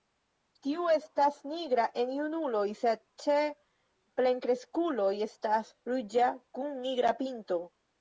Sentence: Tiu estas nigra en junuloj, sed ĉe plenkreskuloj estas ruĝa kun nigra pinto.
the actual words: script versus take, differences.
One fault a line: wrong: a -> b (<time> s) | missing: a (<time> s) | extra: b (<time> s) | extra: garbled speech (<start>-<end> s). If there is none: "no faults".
no faults